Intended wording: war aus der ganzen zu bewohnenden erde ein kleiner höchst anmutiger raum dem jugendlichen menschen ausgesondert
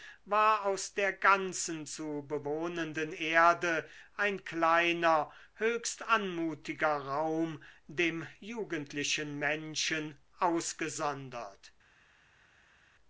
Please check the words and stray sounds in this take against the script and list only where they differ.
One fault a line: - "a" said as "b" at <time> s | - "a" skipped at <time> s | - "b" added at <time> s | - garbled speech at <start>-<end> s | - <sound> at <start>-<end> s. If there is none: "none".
none